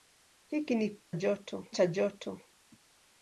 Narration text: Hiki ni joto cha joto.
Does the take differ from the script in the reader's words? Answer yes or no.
no